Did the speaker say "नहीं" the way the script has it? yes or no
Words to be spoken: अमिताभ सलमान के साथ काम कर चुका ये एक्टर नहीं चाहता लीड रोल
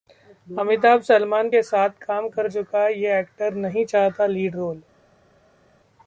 yes